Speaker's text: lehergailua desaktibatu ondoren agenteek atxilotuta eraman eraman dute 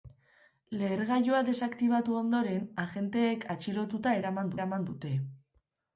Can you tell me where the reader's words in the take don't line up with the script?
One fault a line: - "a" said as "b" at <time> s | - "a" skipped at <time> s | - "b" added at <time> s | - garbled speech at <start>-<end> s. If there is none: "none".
none